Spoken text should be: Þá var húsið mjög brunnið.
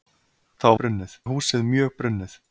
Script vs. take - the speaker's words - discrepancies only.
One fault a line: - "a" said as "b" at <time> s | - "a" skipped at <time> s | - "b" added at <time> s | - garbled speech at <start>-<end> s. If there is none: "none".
- "var" said as "brunnið" at 0.8 s